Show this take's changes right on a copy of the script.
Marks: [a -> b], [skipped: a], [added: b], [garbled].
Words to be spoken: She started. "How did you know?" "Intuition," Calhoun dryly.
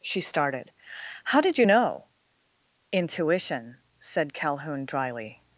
She started. "How did you know?" "Intuition," [added: said] Calhoun dryly.